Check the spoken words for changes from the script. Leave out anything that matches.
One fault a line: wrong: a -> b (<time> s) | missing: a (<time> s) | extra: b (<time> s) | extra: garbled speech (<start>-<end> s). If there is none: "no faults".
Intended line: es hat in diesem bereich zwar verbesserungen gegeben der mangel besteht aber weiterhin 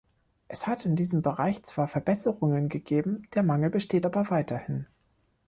no faults